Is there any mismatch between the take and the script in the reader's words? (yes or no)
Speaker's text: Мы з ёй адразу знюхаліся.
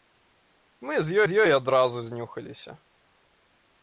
yes